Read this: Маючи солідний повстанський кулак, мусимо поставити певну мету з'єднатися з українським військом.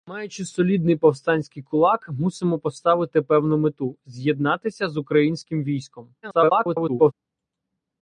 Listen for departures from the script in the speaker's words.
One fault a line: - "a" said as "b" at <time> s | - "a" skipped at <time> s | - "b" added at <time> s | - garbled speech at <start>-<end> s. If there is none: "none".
- garbled speech at 6.2-7.1 s